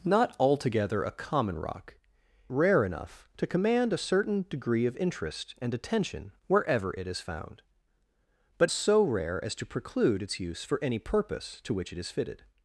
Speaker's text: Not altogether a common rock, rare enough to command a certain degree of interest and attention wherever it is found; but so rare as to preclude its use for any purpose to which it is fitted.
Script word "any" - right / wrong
right